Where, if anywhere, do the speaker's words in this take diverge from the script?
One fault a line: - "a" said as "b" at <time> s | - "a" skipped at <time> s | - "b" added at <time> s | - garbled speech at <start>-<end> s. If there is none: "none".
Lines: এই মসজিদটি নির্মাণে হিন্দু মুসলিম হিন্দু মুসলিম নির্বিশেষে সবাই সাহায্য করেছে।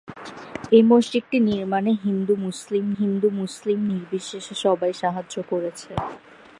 none